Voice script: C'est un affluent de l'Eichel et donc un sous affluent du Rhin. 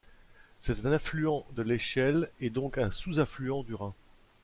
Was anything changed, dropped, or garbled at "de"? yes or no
no